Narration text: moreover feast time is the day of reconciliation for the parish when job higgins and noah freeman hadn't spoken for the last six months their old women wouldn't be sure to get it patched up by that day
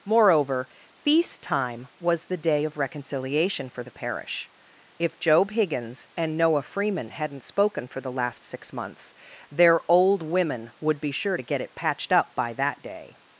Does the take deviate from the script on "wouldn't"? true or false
true